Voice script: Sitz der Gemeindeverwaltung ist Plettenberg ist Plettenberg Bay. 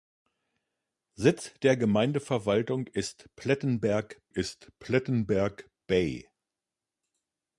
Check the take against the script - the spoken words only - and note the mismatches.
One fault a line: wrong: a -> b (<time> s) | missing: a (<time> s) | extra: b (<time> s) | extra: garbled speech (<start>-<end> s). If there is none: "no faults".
no faults